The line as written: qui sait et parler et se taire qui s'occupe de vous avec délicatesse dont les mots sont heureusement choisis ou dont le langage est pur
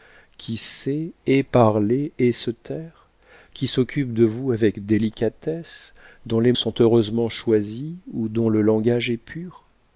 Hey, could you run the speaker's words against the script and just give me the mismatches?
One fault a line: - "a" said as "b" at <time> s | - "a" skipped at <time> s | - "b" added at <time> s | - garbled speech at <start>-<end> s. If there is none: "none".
- "mots" skipped at 6.5 s